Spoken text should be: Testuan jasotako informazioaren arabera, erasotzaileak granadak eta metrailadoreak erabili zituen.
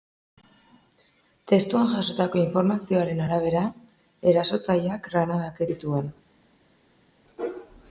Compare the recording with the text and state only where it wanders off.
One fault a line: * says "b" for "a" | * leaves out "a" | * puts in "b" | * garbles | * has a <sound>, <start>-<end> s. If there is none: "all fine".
* leaves out "eta metrailadoreak erabili"